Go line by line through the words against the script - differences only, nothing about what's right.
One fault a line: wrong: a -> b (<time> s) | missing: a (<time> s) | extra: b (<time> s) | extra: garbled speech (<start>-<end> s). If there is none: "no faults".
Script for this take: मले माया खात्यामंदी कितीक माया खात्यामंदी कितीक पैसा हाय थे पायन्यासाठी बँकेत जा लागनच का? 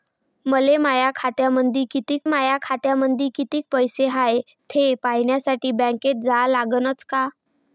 no faults